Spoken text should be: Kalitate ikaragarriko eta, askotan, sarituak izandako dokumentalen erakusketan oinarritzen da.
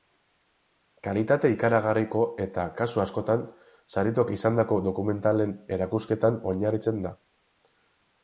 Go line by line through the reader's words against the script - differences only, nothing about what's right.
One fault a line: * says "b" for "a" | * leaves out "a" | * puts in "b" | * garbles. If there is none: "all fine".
* puts in "kasu"